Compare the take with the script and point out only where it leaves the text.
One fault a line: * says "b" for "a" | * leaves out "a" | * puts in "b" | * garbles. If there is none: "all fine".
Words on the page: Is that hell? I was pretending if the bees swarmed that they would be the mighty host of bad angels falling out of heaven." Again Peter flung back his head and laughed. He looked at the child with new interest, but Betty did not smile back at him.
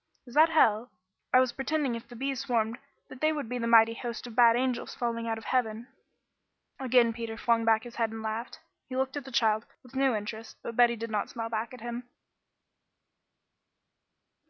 all fine